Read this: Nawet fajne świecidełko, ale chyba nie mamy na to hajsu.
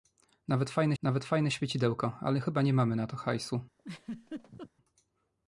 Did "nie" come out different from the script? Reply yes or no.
no